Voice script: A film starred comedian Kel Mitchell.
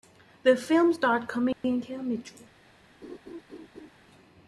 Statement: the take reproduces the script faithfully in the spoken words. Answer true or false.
false